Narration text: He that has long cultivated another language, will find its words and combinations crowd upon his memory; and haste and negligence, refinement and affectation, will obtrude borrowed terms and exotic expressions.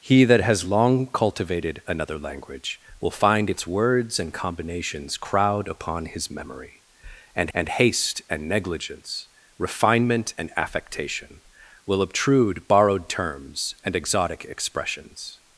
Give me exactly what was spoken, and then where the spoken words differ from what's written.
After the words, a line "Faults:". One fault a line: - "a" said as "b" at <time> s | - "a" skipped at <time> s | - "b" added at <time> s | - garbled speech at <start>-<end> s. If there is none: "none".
He that has long cultivated another language, will find its words and combinations crowd upon his memory; and and haste and negligence, refinement and affectation, will obtrude borrowed terms and exotic expressions.
Faults:
- "and" added at 7.5 s